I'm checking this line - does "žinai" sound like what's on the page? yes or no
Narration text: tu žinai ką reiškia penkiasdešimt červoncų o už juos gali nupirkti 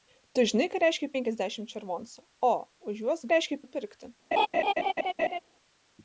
yes